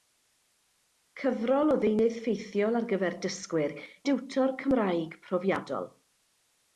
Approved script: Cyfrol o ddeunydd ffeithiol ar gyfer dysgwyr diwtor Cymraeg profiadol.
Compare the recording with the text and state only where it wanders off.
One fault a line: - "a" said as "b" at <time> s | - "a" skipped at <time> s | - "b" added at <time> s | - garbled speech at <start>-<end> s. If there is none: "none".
none